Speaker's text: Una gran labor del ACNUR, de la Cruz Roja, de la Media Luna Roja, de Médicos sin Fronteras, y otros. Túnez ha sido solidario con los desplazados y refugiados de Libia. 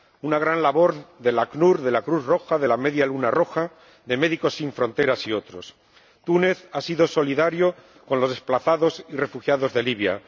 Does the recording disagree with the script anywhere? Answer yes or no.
no